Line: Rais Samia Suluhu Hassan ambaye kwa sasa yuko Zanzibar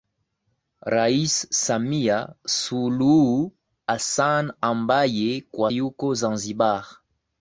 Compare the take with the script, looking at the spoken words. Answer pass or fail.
fail